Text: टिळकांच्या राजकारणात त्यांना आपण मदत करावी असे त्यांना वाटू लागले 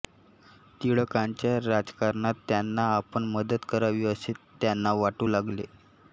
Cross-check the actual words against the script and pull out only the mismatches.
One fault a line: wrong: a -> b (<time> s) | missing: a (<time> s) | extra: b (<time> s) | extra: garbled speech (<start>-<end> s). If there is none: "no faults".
no faults